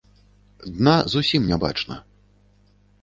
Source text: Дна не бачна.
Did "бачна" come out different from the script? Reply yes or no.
no